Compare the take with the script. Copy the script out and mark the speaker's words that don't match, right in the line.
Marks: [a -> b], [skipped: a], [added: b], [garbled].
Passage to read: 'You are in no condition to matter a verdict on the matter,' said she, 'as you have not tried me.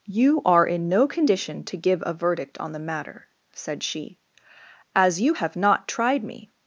'You are in no condition to [matter -> give] a verdict on the matter,' said she, 'as you have not tried me.